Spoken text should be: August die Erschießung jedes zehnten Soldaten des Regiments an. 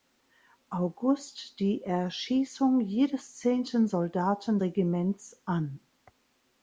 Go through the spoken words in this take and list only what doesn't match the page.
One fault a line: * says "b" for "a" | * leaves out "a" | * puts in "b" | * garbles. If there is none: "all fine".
* leaves out "des"